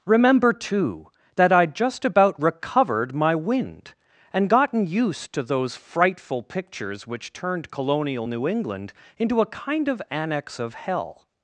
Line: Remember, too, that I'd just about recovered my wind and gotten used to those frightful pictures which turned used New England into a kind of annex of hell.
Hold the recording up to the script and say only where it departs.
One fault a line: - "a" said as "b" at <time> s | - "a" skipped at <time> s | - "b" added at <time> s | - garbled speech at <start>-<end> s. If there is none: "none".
- "used" said as "colonial" at 7.7 s